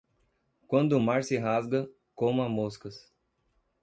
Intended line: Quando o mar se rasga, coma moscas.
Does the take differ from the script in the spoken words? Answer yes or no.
no